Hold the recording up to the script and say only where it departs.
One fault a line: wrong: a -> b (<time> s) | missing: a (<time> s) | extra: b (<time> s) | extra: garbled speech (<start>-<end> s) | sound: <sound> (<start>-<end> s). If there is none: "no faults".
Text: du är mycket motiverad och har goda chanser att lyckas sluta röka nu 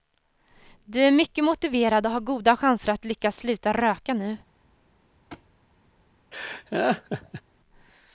sound: thud (5.3-5.5 s)
sound: laugh (6.3-7.4 s)